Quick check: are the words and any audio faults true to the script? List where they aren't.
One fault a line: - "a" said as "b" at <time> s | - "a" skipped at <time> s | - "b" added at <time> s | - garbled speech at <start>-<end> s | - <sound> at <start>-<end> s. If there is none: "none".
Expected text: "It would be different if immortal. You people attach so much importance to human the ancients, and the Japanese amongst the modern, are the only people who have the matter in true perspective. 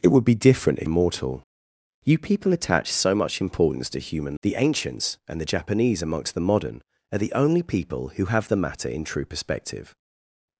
none